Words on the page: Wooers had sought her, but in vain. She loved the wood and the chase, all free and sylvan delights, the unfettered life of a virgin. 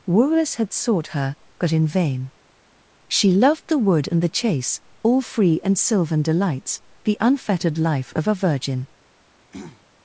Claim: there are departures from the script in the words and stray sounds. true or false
true